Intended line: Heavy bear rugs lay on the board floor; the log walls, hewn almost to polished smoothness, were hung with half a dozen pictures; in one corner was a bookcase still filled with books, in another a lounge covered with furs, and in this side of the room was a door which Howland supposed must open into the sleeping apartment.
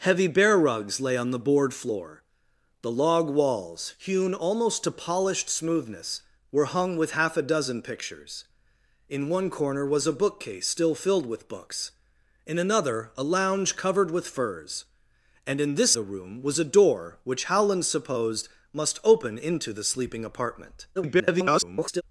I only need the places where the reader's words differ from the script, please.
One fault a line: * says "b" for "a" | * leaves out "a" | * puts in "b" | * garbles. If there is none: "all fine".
* leaves out "side of"
* garbles